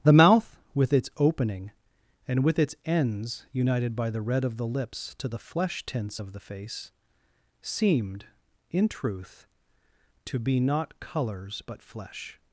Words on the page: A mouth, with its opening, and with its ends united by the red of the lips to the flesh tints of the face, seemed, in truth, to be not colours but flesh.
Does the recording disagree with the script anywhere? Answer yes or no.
yes